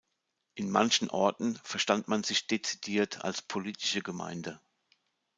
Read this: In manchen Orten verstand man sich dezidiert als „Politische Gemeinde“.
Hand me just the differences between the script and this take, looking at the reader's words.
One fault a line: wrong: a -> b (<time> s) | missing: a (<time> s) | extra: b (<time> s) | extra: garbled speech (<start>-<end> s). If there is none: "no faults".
no faults